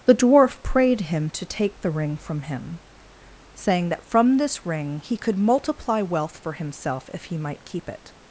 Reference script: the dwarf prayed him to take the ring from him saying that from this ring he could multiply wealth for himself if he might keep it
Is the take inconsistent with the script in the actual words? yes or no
no